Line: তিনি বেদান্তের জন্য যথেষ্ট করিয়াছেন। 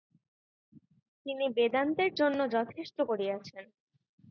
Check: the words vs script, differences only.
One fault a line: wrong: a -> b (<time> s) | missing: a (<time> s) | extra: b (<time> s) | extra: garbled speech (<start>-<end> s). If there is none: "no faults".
no faults